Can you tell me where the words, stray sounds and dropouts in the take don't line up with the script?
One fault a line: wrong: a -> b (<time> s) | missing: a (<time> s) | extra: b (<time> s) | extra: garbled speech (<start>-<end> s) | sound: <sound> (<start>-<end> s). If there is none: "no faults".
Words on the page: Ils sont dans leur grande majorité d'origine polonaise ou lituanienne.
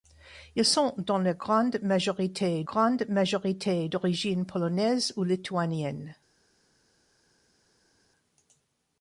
extra: grande majorité (2.6 s)